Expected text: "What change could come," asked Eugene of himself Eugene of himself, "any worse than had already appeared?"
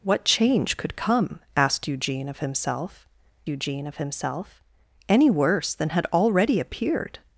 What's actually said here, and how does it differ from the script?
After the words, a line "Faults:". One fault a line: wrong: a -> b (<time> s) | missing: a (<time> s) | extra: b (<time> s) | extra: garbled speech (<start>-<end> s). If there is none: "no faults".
"What change could come," asked Eugene of himself Eugene of himself, "any worse than had already appeared?"
Faults:
no faults